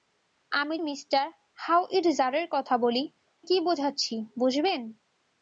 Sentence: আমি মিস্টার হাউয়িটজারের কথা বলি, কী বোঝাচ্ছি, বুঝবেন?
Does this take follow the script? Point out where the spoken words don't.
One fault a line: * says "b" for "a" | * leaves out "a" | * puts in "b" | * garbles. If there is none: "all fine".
all fine